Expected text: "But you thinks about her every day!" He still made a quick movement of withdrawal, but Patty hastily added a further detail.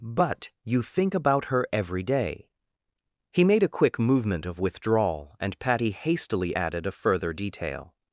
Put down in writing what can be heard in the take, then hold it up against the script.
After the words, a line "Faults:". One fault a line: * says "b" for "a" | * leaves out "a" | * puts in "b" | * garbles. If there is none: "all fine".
"But you think about her every day!" He made a quick movement of withdrawal, and Patty hastily added a further detail.
Faults:
* says "think" for "thinks"
* leaves out "still"
* says "and" for "but"